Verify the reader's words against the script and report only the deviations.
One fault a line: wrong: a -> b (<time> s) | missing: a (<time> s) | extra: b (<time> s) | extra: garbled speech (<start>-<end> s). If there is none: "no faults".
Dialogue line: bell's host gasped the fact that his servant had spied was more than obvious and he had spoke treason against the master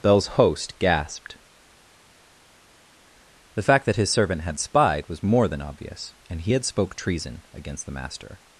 no faults